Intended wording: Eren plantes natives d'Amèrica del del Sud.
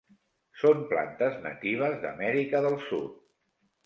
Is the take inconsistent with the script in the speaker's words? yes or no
yes